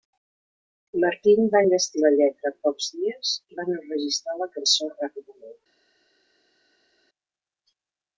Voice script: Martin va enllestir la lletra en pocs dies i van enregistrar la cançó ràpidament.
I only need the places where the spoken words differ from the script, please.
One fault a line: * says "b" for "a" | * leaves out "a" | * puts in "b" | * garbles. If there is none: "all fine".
all fine